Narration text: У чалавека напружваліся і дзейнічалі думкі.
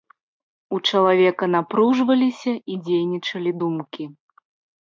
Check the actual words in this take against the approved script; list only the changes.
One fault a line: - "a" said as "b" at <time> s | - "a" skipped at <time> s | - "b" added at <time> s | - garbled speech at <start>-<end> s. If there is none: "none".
none